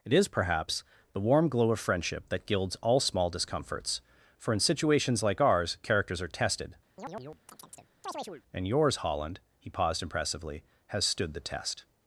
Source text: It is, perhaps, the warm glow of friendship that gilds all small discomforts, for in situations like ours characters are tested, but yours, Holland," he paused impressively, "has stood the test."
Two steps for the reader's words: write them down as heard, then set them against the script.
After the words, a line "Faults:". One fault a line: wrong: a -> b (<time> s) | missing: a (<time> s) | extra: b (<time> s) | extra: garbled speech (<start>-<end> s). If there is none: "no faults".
It is, perhaps, the warm glow of friendship that gilds all small discomforts, for in situations like ours characters are tested, and yours, Holland," he paused impressively, "has stood the test."
Faults:
wrong: but -> and (8.5 s)